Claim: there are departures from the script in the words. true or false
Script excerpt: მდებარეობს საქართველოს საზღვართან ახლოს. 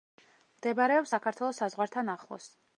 false